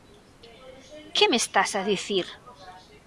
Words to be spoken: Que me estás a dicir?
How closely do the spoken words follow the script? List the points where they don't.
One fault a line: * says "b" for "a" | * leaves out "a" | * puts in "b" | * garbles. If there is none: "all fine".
all fine